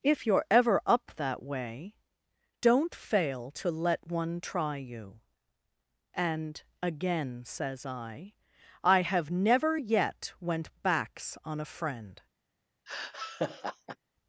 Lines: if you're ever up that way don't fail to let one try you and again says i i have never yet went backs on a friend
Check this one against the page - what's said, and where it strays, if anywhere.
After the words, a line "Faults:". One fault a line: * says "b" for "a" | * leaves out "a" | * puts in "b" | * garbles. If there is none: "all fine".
if you're ever up that way don't fail to let one try you and again says i i have never yet went backs on a friend
Faults:
all fine